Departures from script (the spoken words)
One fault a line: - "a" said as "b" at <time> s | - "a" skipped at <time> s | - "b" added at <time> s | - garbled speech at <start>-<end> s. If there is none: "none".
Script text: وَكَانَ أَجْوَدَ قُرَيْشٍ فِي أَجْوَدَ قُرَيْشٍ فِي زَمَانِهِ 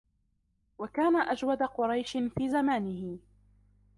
- "أَجْوَدَ قُرَيْشٍ فِي" skipped at 2.5 s